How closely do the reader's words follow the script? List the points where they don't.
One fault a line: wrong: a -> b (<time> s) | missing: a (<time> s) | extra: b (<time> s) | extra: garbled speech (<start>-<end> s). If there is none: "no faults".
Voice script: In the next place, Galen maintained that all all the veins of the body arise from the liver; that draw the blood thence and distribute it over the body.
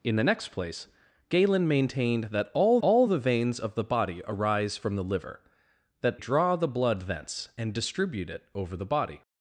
no faults